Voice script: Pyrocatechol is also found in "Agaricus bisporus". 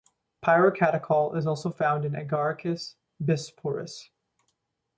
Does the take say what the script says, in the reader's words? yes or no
yes